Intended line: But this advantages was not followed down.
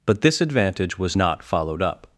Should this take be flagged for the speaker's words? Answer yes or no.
yes